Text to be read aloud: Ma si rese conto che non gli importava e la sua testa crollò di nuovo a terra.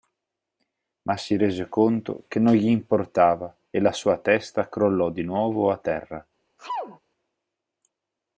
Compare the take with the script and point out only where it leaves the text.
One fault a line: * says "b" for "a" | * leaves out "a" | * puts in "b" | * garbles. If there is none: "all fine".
all fine